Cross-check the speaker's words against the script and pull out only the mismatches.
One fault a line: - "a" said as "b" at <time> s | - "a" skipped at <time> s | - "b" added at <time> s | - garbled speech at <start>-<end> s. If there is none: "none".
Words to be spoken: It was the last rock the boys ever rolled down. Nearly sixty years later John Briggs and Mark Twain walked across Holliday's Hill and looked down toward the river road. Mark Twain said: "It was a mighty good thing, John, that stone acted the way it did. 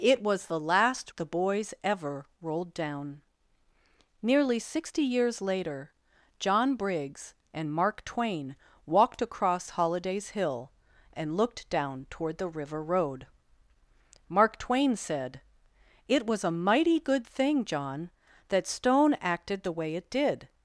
- "rock" skipped at 1.1 s